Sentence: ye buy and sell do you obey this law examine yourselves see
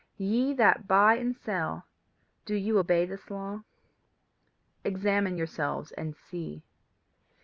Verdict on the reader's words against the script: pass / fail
fail